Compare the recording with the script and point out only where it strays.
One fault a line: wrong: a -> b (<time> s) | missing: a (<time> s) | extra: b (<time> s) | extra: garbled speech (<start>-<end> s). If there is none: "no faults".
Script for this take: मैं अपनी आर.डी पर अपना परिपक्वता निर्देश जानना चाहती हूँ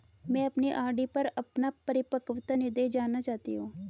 no faults